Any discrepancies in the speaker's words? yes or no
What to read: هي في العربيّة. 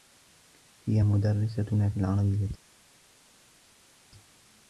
yes